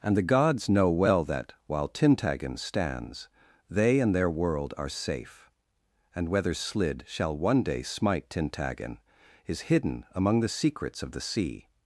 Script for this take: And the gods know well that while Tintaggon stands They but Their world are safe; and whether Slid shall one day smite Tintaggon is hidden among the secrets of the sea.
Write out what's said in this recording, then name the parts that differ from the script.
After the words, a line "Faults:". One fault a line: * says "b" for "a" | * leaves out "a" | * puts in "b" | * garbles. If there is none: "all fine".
And the gods know well that while Tintaggon stands They and Their world are safe; and whether Slid shall one day smite Tintaggon is hidden among the secrets of the sea.
Faults:
* says "and" for "but"